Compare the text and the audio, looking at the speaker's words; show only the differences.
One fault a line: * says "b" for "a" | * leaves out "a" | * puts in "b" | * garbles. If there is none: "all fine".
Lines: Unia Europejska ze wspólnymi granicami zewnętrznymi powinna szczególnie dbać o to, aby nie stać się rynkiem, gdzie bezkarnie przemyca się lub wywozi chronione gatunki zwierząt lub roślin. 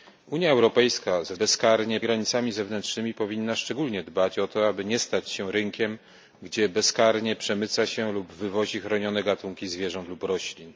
* says "bezkarnie" for "wspólnymi"